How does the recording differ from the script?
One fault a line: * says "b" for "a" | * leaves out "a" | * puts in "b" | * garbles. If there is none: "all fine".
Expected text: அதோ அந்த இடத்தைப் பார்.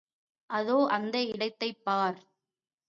all fine